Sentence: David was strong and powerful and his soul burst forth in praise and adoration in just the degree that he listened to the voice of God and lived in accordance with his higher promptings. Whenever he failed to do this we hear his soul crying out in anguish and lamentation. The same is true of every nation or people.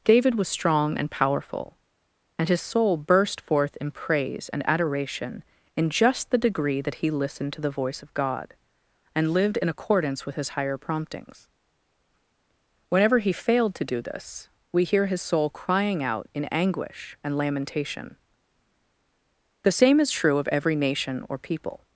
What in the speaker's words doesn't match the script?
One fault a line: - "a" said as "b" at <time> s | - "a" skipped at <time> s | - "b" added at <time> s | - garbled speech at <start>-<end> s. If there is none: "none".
none